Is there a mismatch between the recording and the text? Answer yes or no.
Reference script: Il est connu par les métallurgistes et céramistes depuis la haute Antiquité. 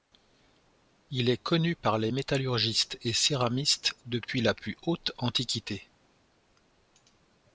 yes